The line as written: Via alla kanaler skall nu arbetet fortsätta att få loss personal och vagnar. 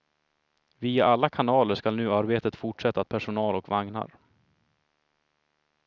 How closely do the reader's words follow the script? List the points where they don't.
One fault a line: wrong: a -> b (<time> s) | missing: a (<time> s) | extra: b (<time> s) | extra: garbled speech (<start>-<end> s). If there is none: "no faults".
missing: få loss (3.1 s)